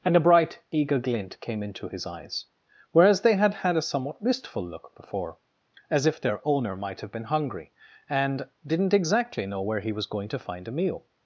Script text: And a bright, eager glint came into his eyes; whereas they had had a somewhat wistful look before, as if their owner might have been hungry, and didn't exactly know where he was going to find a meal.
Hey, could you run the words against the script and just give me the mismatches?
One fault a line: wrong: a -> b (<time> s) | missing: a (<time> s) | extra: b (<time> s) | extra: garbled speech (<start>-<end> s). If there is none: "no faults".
no faults